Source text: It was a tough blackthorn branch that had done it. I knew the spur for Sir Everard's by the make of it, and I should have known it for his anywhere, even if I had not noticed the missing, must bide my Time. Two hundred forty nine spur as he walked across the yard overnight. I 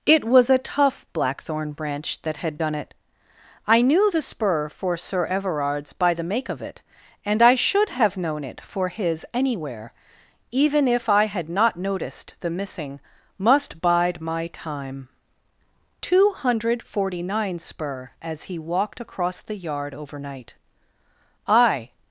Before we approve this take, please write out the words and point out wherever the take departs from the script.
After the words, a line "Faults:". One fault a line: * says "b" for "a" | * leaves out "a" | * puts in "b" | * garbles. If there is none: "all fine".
It was a tough blackthorn branch that had done it. I knew the spur for Sir Everard's by the make of it, and I should have known it for his anywhere, even if I had not noticed the missing, must bide my Time. Two hundred forty nine spur as he walked across the yard overnight. I
Faults:
all fine